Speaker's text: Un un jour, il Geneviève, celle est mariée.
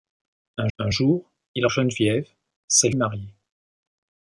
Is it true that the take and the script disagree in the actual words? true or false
false